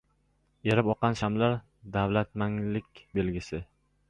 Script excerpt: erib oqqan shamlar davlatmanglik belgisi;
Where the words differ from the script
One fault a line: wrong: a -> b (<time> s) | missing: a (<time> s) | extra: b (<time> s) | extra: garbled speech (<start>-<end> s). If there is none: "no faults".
no faults